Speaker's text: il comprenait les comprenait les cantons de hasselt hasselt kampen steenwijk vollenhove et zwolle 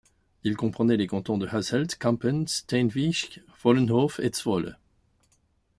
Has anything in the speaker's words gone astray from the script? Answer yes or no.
yes